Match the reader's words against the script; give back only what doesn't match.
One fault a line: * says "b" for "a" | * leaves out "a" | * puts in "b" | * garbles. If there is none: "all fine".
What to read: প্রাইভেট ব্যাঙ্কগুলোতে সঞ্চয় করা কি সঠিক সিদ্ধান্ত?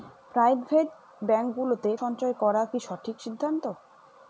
all fine